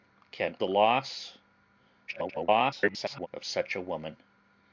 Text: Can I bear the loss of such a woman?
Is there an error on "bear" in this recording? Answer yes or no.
yes